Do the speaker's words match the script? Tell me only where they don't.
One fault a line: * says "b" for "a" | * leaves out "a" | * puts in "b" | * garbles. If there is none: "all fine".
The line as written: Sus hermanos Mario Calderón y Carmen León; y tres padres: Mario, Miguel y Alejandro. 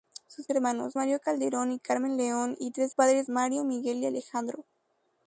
all fine